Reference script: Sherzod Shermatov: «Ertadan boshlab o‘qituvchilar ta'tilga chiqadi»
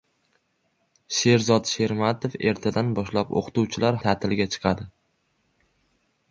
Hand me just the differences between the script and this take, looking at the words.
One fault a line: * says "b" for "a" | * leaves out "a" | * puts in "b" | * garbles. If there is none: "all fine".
all fine